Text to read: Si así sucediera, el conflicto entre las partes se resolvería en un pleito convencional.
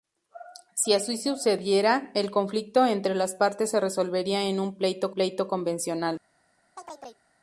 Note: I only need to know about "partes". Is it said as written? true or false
true